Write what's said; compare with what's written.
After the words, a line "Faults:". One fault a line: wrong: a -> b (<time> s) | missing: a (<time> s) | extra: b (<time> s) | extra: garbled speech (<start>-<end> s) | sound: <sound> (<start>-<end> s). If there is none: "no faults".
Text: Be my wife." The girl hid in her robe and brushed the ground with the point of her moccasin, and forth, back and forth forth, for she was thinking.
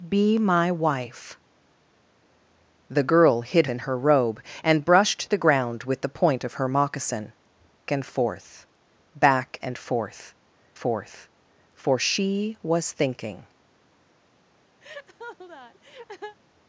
Be my wife." The girl hid in her robe and brushed the ground with the point of her moccasin, and forth, back and forth forth, for she was thinking.
Faults:
sound: laugh (14.8-16.4 s)